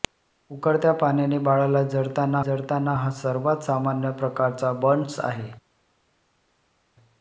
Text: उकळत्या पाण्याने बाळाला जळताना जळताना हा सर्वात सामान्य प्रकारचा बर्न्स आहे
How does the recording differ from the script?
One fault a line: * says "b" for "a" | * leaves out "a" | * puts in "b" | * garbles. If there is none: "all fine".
all fine